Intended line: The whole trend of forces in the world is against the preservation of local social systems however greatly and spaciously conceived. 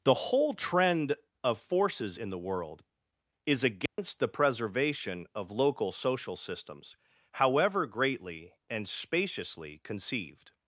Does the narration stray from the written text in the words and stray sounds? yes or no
yes